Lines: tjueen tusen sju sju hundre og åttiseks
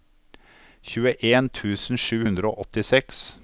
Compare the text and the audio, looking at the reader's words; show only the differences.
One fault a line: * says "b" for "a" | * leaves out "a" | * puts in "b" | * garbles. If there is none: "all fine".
* leaves out "sju"